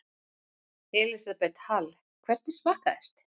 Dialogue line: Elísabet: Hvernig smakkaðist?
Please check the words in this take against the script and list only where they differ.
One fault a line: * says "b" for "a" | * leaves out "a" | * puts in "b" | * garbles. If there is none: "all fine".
* puts in "Hall"